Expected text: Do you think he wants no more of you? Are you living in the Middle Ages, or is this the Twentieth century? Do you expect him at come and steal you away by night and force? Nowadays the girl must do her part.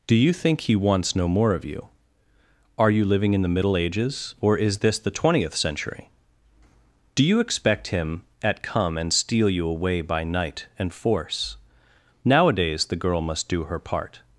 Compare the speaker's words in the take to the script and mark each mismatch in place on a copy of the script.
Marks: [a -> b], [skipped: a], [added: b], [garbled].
Do you think he wants no more of you? Are you living in the Middle Ages, or is this the Twentieth century? Do you expect him at come and steal you away by night and force? Nowadays the girl must do her part.